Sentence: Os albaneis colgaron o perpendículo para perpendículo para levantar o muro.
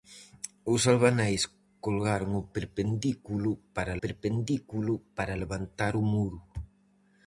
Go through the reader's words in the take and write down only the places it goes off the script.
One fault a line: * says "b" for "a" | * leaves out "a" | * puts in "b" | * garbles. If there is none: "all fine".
all fine